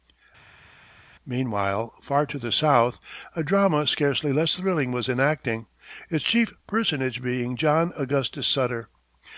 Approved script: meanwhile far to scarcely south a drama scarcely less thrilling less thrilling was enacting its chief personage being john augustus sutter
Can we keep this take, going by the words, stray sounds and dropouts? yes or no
no